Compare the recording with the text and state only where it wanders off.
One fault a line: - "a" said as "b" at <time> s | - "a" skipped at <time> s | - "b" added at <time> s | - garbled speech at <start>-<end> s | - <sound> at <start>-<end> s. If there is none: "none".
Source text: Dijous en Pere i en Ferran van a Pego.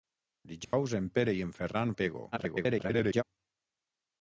- dropout at 0.6-0.7 s
- "van" skipped at 1.9 s
- garbled speech at 2.3-3.2 s